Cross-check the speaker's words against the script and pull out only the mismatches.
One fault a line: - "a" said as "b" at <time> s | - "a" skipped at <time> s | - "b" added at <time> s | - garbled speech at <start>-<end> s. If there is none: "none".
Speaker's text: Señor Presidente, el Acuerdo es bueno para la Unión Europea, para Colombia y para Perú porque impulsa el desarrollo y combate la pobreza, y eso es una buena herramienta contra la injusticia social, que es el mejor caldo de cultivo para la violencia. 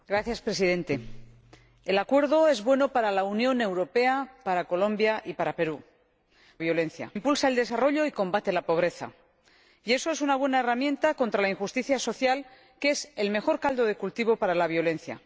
- "porque" said as "violencia" at 6.6 s